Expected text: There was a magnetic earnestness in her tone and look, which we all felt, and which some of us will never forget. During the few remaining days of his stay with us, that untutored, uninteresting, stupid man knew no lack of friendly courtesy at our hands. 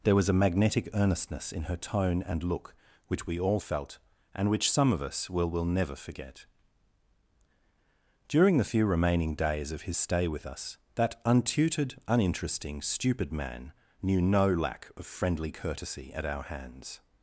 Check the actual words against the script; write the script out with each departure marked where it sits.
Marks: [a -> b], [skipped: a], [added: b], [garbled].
There was a magnetic earnestness in her tone and look, which we all felt, and which some of us will [added: will] never forget. During the few remaining days of his stay with us, that untutored, uninteresting, stupid man knew no lack of friendly courtesy at our hands.